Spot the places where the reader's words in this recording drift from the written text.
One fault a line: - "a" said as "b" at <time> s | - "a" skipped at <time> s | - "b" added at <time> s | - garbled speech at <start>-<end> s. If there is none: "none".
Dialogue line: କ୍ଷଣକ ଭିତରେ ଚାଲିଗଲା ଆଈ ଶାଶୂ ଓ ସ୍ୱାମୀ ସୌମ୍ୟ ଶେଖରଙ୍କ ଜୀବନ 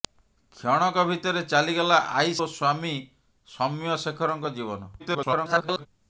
- "ଶାଶୂ" skipped at 2.3 s
- garbled speech at 5.0-5.9 s